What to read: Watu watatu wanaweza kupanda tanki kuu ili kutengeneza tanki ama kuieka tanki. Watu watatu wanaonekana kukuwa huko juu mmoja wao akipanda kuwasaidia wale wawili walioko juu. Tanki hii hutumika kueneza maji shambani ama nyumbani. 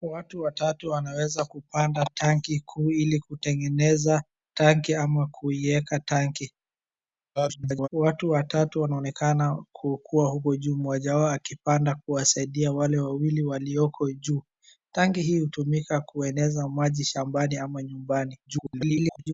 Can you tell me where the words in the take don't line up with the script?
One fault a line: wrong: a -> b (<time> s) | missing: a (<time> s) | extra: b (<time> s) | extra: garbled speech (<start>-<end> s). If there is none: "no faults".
extra: garbled speech (7.4-7.9 s)
extra: garbled speech (18.5-19.3 s)